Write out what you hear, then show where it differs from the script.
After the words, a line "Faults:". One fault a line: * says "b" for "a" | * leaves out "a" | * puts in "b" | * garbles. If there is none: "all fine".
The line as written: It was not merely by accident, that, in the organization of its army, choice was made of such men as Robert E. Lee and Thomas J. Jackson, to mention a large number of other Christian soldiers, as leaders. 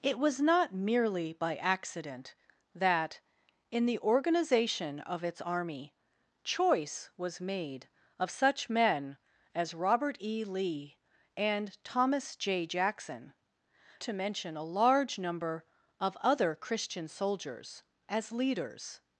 It was not merely by accident, that, in the organization of its army, choice was made of such men as Robert E. Lee and Thomas J. Jackson, to mention a large number of other Christian soldiers, as leaders.
Faults:
all fine